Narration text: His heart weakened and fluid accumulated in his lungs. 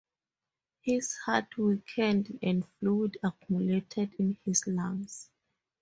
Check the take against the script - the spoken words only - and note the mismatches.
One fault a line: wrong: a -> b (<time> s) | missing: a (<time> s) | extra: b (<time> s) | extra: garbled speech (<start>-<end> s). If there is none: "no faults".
no faults